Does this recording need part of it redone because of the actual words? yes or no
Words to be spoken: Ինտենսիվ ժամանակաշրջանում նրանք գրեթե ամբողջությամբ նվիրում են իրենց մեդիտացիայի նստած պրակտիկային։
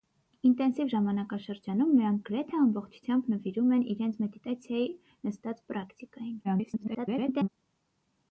yes